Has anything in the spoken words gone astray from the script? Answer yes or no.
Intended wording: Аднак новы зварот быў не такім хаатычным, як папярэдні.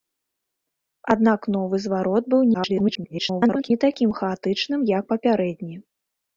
yes